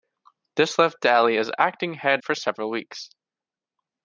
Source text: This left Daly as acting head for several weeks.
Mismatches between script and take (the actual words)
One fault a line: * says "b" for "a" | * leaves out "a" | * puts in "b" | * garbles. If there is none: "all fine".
all fine